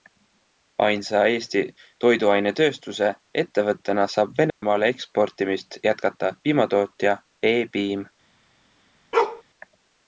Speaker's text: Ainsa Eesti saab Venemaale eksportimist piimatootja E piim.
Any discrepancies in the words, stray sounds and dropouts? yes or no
yes